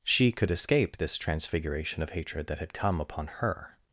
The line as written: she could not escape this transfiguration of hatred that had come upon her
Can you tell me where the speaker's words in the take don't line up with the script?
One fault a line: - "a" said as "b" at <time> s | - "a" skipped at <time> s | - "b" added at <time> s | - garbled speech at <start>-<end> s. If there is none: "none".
- "not" skipped at 0.5 s